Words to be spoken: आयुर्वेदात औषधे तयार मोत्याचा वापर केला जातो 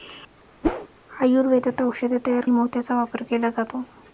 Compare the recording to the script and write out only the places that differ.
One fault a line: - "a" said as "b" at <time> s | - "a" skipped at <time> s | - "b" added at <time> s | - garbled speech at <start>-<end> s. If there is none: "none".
none